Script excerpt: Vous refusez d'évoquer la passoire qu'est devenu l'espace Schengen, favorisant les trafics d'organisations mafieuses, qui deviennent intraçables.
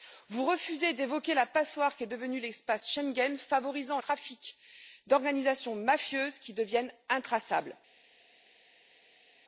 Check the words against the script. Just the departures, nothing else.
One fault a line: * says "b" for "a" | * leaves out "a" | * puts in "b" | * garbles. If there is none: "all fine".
* leaves out "les"